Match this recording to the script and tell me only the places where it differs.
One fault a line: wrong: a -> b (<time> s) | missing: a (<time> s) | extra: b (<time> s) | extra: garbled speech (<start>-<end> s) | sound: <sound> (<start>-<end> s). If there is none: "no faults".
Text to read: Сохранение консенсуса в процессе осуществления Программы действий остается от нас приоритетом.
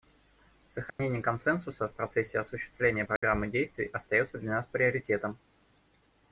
sound: dropout (0.9-1.0 s)
sound: dropout (3.2-3.2 s)
wrong: от -> для (4.4 s)